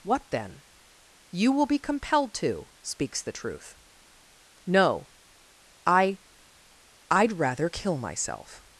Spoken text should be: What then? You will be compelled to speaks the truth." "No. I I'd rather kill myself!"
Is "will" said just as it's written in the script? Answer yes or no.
yes